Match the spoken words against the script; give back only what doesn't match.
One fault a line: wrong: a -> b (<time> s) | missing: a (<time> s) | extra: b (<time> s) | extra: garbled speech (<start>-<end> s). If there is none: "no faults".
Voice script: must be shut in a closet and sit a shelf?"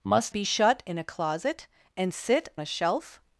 no faults